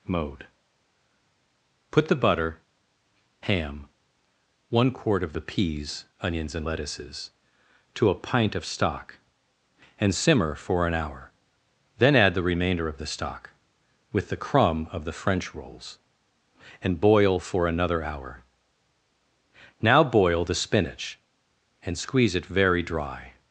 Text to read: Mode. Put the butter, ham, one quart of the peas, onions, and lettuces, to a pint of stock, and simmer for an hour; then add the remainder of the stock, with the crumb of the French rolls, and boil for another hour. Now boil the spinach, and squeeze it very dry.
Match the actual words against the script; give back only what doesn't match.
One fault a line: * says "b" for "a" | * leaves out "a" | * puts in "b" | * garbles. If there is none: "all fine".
all fine